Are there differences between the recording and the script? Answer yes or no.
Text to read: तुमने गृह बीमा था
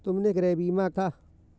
no